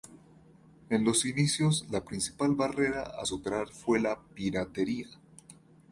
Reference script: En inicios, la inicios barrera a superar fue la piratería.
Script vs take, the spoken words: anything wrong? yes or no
yes